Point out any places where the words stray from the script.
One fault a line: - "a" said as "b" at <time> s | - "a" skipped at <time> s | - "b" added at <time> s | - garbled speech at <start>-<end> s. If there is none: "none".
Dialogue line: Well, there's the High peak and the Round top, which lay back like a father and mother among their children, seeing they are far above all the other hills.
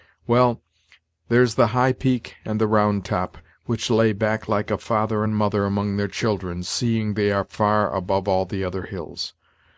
none